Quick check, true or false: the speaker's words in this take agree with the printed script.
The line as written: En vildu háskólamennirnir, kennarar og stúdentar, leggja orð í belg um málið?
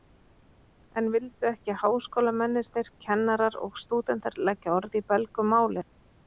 false